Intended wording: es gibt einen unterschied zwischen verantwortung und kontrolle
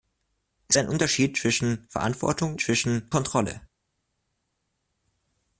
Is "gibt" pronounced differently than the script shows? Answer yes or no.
yes